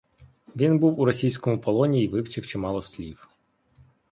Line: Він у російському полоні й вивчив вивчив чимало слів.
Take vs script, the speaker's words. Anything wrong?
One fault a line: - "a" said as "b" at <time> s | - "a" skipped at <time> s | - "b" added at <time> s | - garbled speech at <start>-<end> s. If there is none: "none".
- "був" added at 0.8 s
- "вивчив" skipped at 2.5 s